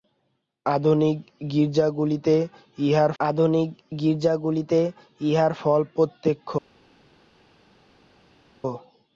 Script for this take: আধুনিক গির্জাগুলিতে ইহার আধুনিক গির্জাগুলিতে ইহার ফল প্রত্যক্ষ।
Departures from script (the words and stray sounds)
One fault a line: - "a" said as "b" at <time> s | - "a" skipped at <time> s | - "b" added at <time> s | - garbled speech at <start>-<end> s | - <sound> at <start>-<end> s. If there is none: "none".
none